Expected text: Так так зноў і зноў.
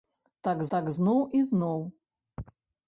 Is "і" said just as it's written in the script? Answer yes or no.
yes